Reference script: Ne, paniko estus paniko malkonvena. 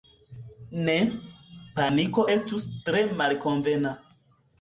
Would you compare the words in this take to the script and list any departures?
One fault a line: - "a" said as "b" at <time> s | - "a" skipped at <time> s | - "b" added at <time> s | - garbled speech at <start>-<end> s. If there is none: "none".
- "paniko" said as "tre" at 2.9 s